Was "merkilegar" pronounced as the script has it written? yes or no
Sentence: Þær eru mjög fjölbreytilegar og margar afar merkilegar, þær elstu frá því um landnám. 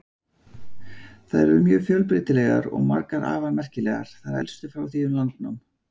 yes